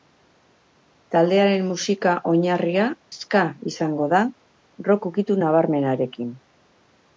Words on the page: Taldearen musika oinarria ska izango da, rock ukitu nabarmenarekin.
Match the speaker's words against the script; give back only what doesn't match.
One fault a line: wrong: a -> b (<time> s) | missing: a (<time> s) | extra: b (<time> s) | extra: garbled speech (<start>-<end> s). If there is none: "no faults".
no faults